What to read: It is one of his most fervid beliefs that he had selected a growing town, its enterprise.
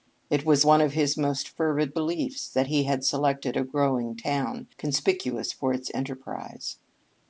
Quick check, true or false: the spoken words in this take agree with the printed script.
false